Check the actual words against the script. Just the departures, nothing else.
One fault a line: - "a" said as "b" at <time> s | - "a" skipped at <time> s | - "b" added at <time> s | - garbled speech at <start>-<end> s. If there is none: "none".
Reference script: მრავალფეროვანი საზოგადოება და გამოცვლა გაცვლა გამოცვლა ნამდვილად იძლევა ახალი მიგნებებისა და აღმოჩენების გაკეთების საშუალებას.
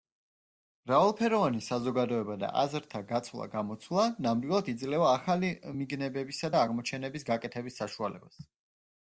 - "გამოცვლა" said as "აზრთა" at 2.6 s